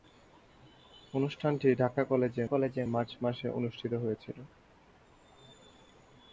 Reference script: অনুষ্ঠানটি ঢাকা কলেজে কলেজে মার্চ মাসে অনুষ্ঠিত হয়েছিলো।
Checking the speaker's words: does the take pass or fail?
pass